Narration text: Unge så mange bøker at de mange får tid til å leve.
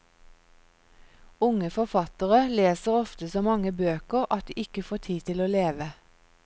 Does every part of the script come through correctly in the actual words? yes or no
no